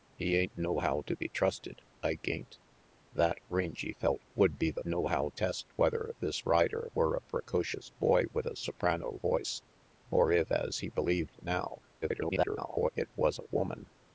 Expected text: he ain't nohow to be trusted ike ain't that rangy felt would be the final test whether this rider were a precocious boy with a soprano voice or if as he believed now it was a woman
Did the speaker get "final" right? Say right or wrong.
wrong